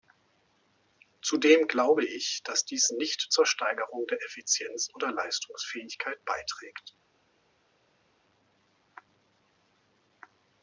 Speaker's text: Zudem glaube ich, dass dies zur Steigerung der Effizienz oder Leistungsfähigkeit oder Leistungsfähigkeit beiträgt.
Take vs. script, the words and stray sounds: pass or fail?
fail